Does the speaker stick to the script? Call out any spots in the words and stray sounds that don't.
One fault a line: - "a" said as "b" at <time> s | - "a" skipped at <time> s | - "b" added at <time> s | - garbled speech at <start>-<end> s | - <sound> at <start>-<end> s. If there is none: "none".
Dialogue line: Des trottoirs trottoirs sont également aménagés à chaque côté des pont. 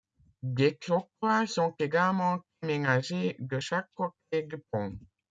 - "trottoirs" skipped at 1.5 s
- "à" said as "de" at 3.4 s
- "des" said as "du" at 4.4 s